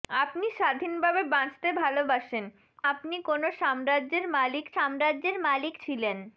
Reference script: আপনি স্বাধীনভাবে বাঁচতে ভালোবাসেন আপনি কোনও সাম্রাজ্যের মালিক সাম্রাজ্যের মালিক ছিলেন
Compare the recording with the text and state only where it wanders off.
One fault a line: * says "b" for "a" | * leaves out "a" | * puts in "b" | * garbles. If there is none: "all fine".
all fine